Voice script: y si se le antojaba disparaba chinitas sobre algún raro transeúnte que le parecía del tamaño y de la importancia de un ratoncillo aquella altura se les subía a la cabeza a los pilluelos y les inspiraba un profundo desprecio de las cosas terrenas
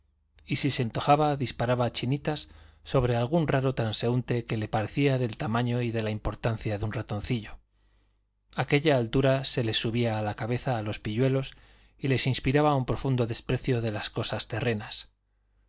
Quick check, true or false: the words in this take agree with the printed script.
false